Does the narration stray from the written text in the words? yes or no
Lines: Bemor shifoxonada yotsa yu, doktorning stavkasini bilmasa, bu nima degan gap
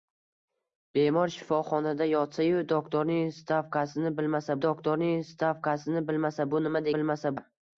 yes